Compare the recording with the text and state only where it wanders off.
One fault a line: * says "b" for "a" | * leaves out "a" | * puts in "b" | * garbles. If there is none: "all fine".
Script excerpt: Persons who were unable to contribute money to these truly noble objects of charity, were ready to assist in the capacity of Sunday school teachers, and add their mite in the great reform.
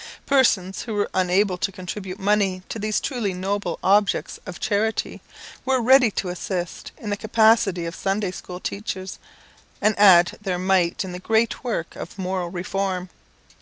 * puts in "work of moral"